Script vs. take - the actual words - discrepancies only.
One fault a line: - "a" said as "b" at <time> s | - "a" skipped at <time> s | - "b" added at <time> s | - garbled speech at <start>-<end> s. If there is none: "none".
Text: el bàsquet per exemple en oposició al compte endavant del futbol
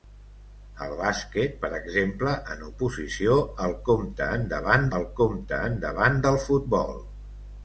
- "al compte endavant" added at 5.0 s